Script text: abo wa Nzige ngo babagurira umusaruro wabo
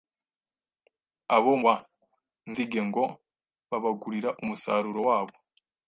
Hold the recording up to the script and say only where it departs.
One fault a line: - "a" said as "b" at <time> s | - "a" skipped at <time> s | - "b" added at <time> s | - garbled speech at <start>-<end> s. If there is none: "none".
none